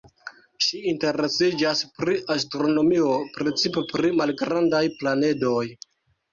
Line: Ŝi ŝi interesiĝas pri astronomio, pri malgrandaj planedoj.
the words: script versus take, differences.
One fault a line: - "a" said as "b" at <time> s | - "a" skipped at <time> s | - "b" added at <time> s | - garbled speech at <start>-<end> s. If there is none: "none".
- "ŝi" skipped at 0.8 s
- "precipe" added at 3.4 s